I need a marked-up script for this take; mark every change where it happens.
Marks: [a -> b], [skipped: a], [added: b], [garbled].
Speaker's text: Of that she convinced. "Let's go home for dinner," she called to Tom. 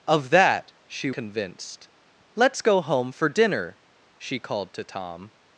Of that she convinced. "Let's go home for dinner," she called to Tom.